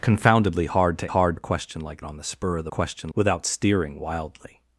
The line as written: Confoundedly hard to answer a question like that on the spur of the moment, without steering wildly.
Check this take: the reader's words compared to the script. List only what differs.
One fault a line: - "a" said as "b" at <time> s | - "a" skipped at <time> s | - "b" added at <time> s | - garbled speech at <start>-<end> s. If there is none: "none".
- "answer" said as "hard" at 1.0 s
- "that" skipped at 2.0 s
- "moment" said as "question" at 2.7 s